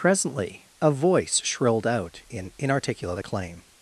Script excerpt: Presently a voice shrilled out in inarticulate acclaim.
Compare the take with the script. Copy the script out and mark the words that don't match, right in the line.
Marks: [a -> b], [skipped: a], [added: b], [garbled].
Presently a voice shrilled out in inarticulate acclaim.